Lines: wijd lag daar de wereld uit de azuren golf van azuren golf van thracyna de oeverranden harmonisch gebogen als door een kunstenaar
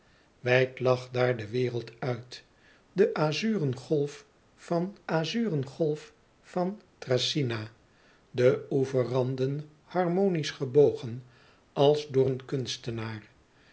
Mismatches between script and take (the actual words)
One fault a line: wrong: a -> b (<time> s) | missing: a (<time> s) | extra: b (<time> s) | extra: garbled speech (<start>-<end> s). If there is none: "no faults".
no faults